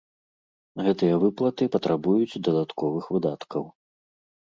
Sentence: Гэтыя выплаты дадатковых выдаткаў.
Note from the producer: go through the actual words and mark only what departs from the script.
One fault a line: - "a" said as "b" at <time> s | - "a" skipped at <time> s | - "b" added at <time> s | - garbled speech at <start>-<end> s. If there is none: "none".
- "патрабуюць" added at 1.7 s